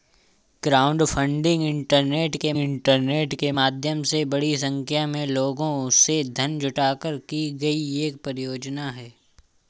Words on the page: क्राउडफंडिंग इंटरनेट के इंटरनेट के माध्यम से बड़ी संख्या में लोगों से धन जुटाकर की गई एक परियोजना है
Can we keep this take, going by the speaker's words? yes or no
yes